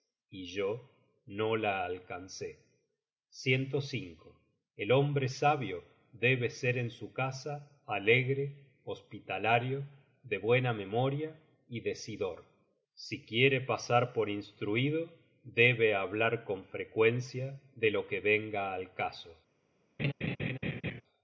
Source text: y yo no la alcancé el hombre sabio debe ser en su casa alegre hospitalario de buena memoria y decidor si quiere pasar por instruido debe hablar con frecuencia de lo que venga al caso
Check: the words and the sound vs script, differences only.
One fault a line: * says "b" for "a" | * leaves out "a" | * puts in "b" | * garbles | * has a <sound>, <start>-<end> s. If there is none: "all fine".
* has a laugh, 20.0-21.0 s